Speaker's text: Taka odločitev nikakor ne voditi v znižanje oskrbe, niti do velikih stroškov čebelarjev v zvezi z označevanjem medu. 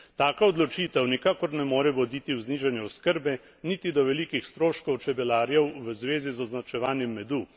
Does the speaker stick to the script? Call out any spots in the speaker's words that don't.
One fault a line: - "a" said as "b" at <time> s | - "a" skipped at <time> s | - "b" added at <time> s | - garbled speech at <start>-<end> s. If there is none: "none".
- "more" added at 1.6 s